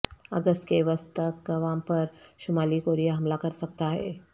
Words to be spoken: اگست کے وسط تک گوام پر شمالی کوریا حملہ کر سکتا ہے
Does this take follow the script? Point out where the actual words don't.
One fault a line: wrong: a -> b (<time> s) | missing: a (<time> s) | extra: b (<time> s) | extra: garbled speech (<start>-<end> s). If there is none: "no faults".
no faults